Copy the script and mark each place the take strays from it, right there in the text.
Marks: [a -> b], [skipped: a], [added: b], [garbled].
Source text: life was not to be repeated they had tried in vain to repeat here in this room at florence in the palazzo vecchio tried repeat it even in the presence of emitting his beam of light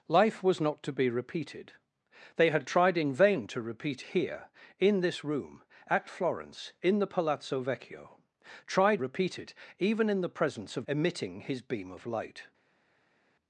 life was not to be repeated they had tried in vain to repeat here in this room at florence in the palazzo vecchio tried repeat it even in the presence of emitting his beam of light